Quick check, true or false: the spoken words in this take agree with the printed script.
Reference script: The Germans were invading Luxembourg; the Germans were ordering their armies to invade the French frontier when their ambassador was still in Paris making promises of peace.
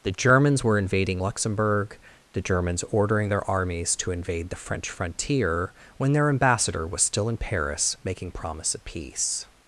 false